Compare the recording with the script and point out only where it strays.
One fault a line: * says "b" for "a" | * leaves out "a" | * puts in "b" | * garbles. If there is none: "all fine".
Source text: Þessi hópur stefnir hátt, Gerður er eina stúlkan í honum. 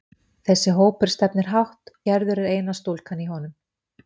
all fine